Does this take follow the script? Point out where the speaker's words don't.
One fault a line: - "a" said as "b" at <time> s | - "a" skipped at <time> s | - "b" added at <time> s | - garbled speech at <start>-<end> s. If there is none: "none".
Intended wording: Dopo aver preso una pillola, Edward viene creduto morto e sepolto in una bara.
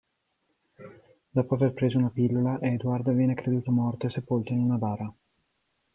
none